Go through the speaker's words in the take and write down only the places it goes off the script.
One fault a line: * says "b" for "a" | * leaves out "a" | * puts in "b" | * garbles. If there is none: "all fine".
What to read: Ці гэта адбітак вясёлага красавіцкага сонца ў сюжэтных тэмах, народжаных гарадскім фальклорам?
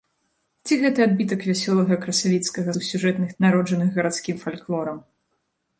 * leaves out "сонца"
* leaves out "тэмах"